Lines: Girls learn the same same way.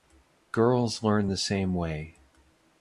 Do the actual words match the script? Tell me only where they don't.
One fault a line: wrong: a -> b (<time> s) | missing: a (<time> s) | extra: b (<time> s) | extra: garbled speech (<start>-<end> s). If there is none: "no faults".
missing: same (1.7 s)